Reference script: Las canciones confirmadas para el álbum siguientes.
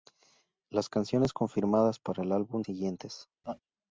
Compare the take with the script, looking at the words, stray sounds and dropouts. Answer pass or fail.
fail